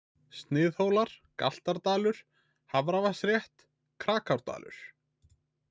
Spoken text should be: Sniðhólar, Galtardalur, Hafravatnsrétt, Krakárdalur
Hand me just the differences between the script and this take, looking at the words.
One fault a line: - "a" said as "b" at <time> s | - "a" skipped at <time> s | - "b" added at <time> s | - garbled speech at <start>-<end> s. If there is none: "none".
none